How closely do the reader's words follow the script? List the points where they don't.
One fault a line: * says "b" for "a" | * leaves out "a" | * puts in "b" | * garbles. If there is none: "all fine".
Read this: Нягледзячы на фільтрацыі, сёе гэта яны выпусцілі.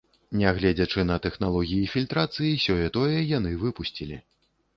* puts in "тэхналогіі"
* says "тое" for "гэта"